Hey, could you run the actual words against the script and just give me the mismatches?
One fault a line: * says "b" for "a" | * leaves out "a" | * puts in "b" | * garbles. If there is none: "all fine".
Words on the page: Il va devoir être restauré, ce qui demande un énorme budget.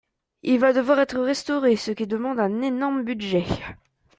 all fine